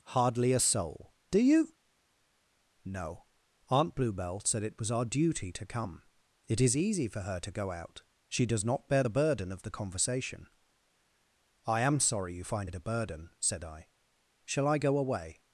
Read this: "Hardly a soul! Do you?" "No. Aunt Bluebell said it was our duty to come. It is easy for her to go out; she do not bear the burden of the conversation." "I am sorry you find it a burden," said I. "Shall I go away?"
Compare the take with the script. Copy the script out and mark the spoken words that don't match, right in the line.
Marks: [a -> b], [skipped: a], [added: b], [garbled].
"Hardly a soul! Do you?" "No. Aunt Bluebell said it was our duty to come. It is easy for her to go out; she [do -> does] not bear the burden of the conversation." "I am sorry you find it a burden," said I. "Shall I go away?"